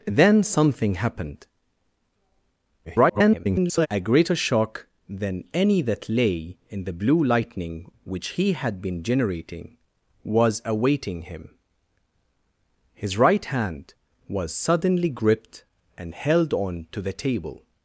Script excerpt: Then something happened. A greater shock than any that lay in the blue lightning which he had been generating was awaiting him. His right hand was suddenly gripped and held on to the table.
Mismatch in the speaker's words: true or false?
true